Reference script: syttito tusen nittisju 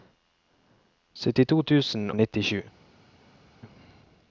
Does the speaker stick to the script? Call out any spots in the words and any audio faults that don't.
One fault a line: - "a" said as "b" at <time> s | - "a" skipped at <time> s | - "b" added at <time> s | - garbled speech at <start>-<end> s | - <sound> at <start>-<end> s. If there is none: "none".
none